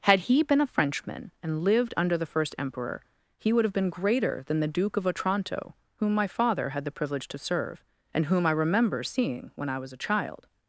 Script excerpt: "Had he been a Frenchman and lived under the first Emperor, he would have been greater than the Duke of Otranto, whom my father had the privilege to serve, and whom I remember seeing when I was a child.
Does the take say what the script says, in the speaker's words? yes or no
yes